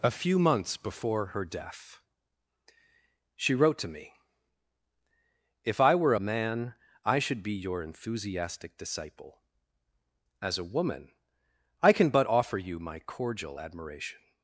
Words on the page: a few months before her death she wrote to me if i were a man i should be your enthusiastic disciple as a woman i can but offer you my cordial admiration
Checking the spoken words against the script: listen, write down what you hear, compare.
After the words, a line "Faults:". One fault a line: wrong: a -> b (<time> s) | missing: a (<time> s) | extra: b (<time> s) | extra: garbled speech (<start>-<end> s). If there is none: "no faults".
a few months before her death she wrote to me if i were a man i should be your enthusiastic disciple as a woman i can but offer you my cordial admiration
Faults:
no faults